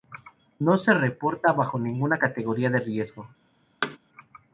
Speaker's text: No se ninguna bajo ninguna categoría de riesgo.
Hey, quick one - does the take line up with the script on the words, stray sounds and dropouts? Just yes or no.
no